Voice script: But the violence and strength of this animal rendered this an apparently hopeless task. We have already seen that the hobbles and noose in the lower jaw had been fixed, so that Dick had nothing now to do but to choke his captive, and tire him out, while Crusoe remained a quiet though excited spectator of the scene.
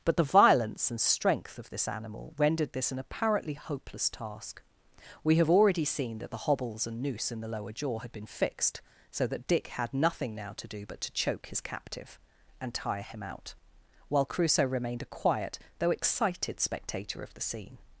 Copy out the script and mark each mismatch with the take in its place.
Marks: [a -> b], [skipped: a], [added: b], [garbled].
But the violence and strength of this animal rendered this an apparently hopeless task. We have already seen that the hobbles and noose in the lower jaw had been fixed, so that Dick had nothing now to do but to choke his captive, and tire him out, while Crusoe remained a quiet though excited spectator of the scene.